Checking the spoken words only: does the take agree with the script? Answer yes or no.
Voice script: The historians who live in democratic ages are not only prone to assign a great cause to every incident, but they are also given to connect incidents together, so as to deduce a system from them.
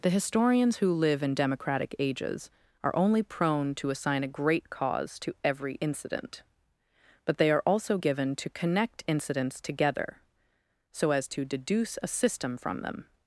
no